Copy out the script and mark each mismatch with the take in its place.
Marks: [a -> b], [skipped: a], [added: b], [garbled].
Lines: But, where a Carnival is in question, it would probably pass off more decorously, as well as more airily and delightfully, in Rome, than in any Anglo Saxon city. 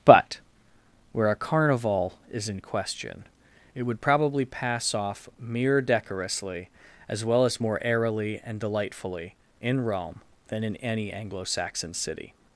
But, where a Carnival is in question, it would probably pass off [more -> mere] decorously, as well as more airily and delightfully, in Rome, than in any Anglo Saxon city.